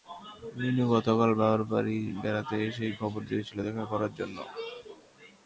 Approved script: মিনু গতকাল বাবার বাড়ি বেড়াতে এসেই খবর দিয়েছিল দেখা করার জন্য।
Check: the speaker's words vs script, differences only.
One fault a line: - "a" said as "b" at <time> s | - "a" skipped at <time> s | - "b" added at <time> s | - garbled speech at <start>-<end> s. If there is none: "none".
none